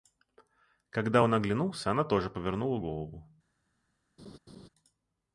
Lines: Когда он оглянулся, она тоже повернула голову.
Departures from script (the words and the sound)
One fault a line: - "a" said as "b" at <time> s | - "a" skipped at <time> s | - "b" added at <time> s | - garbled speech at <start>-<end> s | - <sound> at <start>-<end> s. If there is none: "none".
- laugh at 4.2-4.7 s